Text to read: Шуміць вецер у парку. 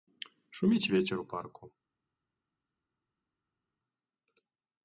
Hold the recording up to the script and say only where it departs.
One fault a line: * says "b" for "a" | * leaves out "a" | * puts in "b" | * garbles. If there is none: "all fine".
all fine